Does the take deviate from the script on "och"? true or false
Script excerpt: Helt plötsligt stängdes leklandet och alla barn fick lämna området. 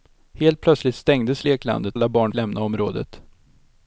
true